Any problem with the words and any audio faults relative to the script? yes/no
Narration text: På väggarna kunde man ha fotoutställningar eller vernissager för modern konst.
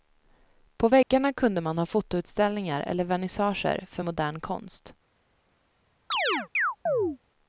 yes